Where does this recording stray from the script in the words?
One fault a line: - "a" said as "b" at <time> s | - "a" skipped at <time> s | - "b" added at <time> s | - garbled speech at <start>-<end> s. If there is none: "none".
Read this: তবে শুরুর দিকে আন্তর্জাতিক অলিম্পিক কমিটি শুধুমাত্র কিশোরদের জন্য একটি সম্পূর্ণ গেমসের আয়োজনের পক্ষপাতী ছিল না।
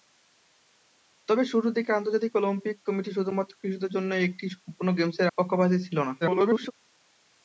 - "আয়োজনের" skipped at 5.3 s
- garbled speech at 6.2-6.7 s